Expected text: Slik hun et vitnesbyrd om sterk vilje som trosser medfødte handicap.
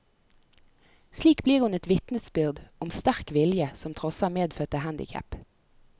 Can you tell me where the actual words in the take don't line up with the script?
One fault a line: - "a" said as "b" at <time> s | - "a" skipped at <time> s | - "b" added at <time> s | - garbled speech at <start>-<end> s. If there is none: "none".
- "blir" added at 1.5 s